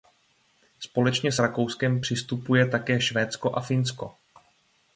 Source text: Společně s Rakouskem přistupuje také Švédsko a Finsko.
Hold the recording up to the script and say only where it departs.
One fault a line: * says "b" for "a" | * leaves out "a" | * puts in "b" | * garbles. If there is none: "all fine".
all fine